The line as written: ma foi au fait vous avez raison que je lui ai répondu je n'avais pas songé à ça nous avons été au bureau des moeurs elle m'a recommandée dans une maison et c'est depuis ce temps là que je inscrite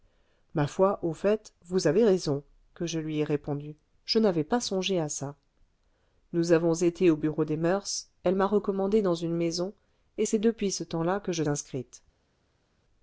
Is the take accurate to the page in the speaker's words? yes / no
yes